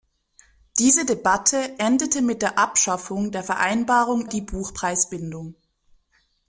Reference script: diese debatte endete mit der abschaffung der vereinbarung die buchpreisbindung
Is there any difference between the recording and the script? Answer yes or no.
no